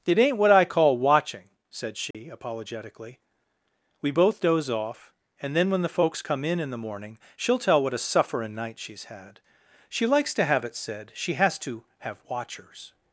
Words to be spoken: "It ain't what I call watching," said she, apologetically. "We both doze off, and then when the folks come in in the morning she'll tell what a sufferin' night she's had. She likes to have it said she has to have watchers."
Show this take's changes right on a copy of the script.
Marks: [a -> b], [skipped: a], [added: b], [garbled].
"It ain't what I call watching," said she, apologetically. "We both doze off, and then when the folks come in in the morning she'll tell what a sufferin' night she's had. She likes to have it said she has to have watchers."